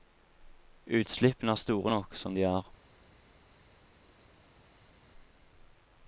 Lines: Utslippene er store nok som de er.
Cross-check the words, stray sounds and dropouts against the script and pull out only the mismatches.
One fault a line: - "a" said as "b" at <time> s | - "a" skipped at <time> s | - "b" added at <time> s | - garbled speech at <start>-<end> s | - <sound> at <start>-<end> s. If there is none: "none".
none